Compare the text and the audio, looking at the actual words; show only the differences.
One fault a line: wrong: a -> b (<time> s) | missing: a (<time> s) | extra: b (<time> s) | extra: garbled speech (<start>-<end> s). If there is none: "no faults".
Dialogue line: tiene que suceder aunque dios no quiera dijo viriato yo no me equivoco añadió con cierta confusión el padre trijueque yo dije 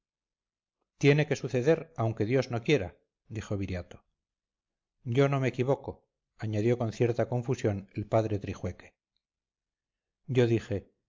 no faults